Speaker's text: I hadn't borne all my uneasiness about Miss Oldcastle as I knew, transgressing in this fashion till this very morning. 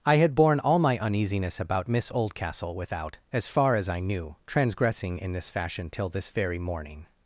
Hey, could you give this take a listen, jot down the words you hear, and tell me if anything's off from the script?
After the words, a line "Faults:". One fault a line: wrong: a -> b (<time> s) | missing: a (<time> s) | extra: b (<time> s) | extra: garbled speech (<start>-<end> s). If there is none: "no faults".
I had borne all my uneasiness about Miss Oldcastle without, as far as I knew, transgressing in this fashion till this very morning.
Faults:
wrong: hadn't -> had (0.1 s)
extra: without as far (2.7 s)